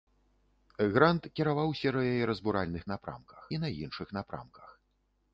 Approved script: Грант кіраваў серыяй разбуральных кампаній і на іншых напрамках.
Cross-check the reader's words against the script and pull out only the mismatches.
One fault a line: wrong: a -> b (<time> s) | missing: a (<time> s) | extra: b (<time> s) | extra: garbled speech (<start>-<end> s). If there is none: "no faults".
wrong: кампаній -> напрамках (3.0 s)